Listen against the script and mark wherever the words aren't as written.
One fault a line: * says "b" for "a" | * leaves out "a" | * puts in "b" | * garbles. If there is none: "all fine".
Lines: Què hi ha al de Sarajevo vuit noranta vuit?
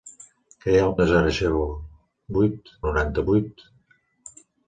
all fine